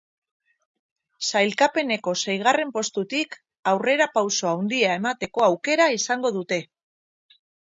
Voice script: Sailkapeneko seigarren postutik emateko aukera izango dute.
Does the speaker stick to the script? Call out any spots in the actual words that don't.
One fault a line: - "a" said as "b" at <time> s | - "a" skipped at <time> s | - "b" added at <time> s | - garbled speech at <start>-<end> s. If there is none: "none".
- "aurrerapauso handia" added at 3.7 s